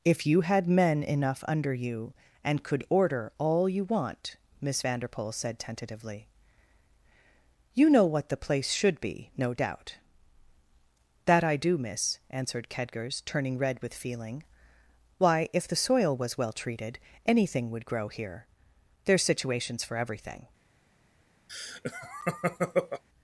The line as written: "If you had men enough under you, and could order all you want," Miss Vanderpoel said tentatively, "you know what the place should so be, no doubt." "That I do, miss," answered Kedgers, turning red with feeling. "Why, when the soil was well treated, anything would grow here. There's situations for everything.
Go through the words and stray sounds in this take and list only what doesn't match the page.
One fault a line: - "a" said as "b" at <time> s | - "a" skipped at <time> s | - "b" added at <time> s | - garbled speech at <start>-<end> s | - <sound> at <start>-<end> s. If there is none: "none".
- "so" skipped at 9.0 s
- "when" said as "if" at 15.5 s
- laugh at 21.5-23.0 s